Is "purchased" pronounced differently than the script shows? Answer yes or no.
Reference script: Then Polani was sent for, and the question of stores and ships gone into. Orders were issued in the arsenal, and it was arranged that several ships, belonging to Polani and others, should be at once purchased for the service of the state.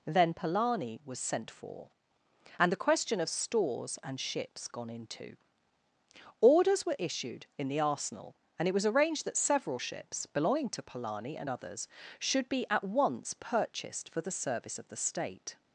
no